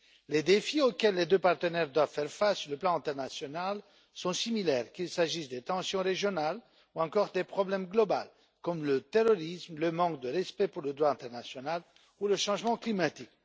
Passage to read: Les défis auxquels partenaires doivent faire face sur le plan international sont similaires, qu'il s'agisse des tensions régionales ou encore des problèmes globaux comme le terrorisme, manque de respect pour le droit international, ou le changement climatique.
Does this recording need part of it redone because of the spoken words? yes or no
yes